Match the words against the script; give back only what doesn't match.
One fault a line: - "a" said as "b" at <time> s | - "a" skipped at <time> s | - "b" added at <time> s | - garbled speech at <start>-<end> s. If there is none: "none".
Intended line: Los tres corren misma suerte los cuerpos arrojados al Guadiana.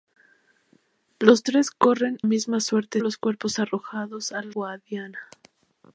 none